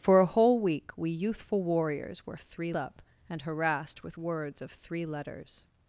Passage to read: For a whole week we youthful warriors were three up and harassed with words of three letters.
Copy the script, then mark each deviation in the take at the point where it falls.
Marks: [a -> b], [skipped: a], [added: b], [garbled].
For a whole week we youthful warriors were three up and harassed with words of three letters.